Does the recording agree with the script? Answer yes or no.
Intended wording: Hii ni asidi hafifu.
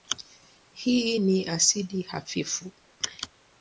yes